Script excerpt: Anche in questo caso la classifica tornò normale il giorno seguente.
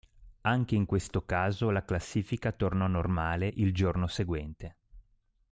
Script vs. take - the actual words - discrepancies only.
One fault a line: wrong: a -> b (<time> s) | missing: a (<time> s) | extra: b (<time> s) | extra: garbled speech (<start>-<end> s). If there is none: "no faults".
no faults